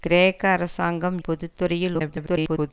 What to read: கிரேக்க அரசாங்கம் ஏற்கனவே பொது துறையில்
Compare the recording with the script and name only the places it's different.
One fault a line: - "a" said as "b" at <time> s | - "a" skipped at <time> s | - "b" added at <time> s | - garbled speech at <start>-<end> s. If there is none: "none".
- "ஏற்கனவே" skipped at 1.2 s
- garbled speech at 1.9-2.7 s